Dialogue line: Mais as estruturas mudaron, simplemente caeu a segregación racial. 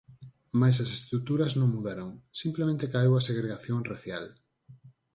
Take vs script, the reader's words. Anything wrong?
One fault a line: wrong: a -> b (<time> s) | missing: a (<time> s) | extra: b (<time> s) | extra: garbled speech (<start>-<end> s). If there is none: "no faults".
extra: non (1.6 s)